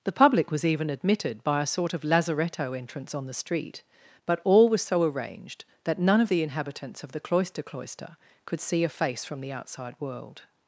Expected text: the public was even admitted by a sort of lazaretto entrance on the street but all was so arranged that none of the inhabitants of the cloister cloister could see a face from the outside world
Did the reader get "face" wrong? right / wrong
right